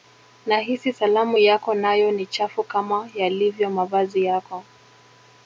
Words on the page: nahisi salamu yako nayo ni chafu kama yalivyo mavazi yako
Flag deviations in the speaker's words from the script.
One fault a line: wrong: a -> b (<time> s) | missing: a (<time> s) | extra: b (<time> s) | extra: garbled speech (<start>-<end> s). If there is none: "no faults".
no faults